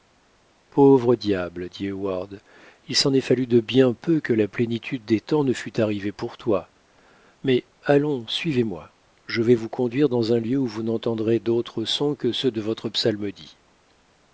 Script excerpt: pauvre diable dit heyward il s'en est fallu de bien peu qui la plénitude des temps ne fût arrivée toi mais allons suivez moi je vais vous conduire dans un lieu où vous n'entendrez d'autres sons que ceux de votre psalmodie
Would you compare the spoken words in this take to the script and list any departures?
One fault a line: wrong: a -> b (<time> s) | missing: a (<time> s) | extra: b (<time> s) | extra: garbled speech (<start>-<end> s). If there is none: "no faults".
wrong: qui -> que (4.2 s)
extra: pour (6.1 s)